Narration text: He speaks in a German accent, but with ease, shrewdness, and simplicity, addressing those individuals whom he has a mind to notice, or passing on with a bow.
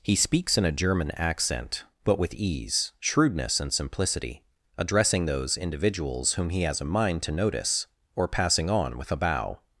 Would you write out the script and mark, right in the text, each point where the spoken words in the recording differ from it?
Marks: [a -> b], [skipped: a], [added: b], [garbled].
He speaks in a German accent, but with ease, shrewdness, and simplicity, addressing those individuals whom he has a mind to notice, or passing on with a bow.